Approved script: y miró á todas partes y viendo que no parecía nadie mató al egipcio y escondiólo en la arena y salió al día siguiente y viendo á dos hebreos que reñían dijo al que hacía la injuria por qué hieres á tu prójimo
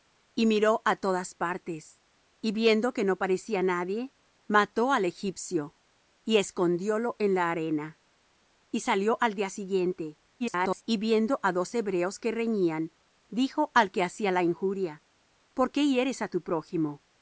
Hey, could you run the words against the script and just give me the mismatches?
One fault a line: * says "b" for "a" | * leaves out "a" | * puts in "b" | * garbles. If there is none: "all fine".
* garbles